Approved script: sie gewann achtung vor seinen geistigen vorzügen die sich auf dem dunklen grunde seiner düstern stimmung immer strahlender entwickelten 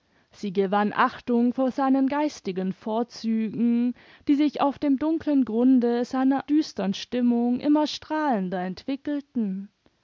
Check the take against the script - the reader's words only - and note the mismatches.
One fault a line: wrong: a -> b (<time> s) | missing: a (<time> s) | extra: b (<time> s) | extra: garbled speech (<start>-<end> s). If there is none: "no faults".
no faults